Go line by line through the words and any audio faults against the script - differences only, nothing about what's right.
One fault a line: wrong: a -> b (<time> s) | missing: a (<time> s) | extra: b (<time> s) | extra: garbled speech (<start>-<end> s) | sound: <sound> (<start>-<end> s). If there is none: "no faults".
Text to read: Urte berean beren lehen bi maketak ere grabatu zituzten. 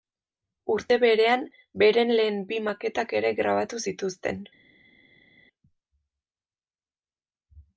no faults